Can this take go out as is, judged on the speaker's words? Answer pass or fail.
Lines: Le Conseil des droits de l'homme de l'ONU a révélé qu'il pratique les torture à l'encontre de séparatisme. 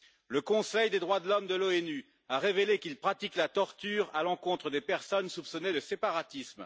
fail